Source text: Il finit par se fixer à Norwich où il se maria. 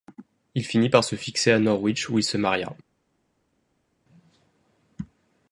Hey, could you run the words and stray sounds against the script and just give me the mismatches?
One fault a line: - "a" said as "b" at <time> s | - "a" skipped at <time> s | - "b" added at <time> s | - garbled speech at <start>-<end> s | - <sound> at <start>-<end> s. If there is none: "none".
none